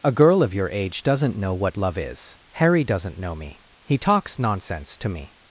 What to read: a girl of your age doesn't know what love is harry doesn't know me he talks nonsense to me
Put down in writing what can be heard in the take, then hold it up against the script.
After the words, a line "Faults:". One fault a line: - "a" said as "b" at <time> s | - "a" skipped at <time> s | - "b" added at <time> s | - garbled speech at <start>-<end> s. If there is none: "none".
a girl of your age doesn't know what love is harry doesn't know me he talks nonsense to me
Faults:
none